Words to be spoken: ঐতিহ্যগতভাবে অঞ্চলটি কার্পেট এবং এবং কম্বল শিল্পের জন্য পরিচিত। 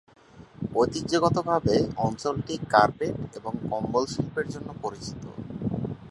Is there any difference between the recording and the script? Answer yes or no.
yes